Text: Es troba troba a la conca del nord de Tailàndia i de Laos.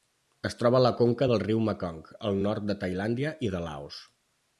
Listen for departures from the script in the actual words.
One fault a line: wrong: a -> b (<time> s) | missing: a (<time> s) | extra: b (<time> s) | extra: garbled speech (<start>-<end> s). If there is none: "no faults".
missing: troba (0.8 s)
extra: riu Mekong al (1.4 s)